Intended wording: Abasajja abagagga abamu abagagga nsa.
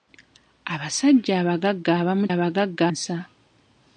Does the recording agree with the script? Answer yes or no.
yes